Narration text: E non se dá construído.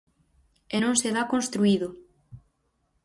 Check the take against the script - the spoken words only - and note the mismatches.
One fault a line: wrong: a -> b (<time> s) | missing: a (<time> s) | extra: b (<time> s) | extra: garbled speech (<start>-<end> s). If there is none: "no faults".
no faults